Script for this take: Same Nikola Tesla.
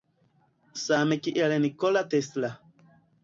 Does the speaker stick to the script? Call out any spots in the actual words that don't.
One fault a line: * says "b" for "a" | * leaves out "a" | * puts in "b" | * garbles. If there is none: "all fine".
* puts in "kiel"